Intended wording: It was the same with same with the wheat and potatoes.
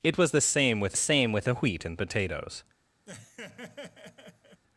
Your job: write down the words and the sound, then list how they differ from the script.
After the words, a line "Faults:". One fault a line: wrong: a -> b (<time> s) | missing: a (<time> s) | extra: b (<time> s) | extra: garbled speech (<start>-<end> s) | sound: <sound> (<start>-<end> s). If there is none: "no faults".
It was the same with same with the wheat and potatoes.
Faults:
sound: laugh (3.1-4.6 s)